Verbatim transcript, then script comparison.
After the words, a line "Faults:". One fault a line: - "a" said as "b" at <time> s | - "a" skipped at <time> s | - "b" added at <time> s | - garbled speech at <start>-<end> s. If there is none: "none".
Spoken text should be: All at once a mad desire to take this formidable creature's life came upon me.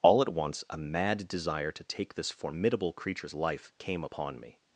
All at once a mad desire to take this formidable creature's life came upon me.
Faults:
none